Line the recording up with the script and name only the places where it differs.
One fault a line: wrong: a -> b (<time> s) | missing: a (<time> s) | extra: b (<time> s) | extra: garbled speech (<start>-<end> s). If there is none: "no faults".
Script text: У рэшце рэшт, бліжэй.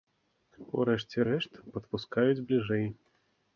extra: падпускаюць (1.7 s)